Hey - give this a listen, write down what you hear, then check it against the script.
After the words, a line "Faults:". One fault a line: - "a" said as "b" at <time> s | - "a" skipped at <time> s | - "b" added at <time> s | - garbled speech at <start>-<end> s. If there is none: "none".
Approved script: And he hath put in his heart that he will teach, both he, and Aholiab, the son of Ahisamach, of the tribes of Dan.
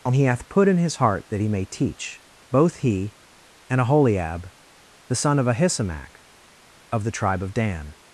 And he hath put in his heart that he may teach, both he, and Aholiab, the son of Ahisamach, of the tribe of Dan.
Faults:
- "will" said as "may" at 1.5 s
- "tribes" said as "tribe" at 7.1 s